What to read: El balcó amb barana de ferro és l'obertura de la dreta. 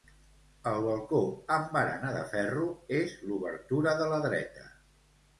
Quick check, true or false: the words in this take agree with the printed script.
true